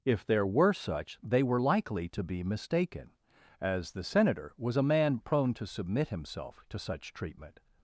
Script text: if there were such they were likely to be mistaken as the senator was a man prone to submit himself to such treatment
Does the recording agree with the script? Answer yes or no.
yes